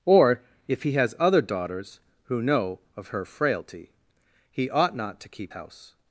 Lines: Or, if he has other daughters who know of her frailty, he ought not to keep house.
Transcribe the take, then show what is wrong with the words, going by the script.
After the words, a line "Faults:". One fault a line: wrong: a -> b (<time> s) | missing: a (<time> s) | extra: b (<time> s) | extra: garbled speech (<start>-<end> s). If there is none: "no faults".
Or, if he has other daughters who know of her frailty, he ought not to keep house.
Faults:
no faults